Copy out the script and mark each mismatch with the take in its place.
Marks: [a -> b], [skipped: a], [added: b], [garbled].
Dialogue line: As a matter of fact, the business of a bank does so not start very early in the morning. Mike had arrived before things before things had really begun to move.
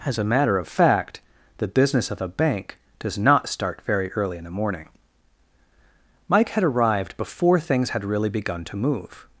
As a matter of fact, the business of a bank does [skipped: so] not start very early in the morning. Mike had arrived before things [skipped: before things] had really begun to move.